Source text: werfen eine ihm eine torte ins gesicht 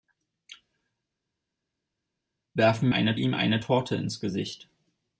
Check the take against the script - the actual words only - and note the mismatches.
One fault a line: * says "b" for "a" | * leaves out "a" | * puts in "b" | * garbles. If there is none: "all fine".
all fine